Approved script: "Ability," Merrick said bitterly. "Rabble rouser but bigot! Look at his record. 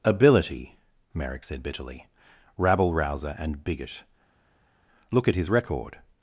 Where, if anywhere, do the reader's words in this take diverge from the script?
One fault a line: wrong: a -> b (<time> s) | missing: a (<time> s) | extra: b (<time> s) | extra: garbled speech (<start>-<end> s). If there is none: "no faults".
wrong: but -> and (3.4 s)